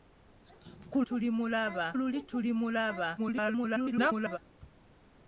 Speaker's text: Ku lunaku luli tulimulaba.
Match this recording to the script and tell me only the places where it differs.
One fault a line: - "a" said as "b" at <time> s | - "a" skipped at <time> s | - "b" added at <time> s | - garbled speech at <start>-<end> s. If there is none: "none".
- "lunaku" said as "tulimulaba" at 1.1 s
- garbled speech at 3.2-4.4 s